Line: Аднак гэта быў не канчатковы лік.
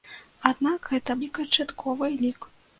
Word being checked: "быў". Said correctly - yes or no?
no